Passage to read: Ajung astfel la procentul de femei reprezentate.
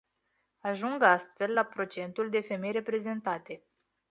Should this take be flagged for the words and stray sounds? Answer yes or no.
no